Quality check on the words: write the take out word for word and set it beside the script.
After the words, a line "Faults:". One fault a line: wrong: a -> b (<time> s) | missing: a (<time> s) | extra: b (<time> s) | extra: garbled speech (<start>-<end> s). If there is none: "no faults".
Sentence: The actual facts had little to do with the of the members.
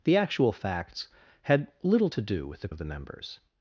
The actual facts had little to do with the of the members.
Faults:
no faults